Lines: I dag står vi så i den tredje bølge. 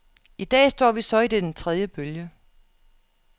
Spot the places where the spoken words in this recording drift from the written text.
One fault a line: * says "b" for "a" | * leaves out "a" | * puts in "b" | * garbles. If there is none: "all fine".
all fine